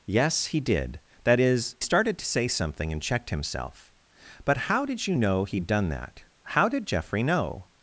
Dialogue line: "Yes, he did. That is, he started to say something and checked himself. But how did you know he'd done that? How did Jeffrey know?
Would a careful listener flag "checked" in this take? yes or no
no